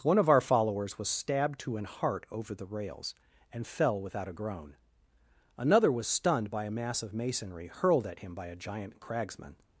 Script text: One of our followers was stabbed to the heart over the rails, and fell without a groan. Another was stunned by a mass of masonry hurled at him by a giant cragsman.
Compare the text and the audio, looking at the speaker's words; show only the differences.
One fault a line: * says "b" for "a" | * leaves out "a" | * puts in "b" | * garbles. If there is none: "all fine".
* says "an" for "the"